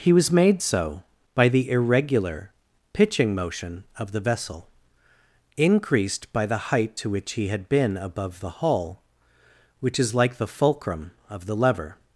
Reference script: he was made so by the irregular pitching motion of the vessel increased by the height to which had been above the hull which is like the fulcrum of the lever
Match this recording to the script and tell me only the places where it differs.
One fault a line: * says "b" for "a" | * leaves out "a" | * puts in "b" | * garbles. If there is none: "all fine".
* puts in "he"